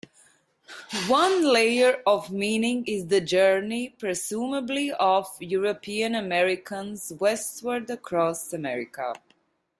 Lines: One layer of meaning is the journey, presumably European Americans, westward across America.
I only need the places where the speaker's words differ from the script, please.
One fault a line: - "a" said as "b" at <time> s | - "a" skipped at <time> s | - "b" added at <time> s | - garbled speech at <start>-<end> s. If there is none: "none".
- "of" added at 4.9 s